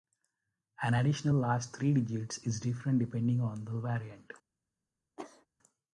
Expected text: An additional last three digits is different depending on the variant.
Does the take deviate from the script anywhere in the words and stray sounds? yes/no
yes